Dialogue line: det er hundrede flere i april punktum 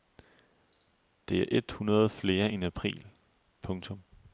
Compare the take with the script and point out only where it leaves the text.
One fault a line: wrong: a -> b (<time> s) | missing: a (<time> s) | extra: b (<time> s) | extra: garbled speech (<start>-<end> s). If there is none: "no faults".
extra: et (1.5 s)
extra: end (2.5 s)